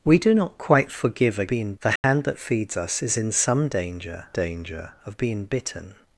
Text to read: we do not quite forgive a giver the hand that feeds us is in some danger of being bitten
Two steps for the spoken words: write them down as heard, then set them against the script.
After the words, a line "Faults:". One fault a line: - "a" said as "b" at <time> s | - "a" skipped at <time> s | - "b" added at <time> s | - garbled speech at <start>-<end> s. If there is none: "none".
we do not quite forgive a being the hand that feeds us is in some danger danger of being bitten
Faults:
- "giver" said as "being" at 1.5 s
- "danger" added at 4.3 s